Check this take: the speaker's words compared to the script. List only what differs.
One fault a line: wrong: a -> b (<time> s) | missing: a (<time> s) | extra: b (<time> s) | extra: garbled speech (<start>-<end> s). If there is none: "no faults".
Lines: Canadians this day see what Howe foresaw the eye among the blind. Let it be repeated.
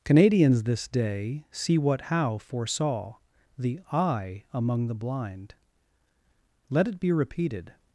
no faults